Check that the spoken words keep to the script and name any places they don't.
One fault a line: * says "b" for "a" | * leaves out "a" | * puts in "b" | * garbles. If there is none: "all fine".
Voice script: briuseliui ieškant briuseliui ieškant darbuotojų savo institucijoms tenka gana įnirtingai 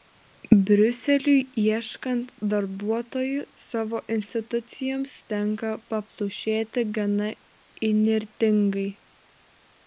* leaves out "briuseliui ieškant"
* puts in "paplušėti"